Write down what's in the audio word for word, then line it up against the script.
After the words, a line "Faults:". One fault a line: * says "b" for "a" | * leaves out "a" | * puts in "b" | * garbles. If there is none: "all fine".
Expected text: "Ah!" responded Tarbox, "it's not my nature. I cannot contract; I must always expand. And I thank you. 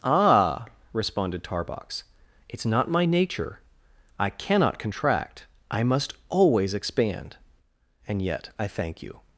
"Ah!" responded Tarbox, "it's not my nature. I cannot contract; I must always expand. And yet I thank you.
Faults:
* puts in "yet"